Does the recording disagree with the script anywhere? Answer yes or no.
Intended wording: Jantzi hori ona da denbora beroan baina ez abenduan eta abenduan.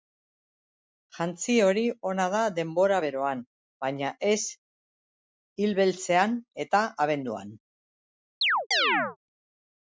yes